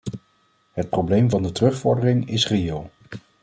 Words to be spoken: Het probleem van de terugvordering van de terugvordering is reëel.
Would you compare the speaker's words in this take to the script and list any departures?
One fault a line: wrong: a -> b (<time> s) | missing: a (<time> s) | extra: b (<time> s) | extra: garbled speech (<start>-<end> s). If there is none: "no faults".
missing: van de terugvordering (2.3 s)